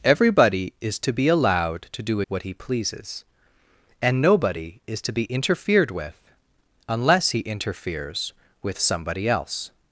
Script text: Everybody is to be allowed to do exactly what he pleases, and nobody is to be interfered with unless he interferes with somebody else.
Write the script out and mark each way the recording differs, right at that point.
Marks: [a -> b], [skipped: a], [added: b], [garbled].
Everybody is to be allowed to do [skipped: exactly] what he pleases, and nobody is to be interfered with unless he interferes with somebody else.